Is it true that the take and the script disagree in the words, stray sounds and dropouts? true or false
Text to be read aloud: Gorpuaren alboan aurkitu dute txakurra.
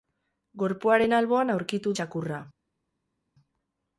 true